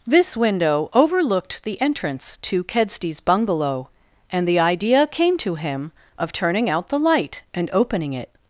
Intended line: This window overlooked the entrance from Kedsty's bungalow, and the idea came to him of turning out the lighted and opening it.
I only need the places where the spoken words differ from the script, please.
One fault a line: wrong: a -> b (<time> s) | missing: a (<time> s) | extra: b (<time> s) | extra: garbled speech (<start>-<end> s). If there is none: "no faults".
wrong: from -> to (2.4 s)
wrong: lighted -> light (7.0 s)